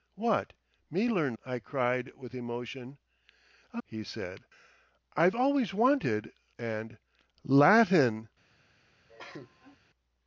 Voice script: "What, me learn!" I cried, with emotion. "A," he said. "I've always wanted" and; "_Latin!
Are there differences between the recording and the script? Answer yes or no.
no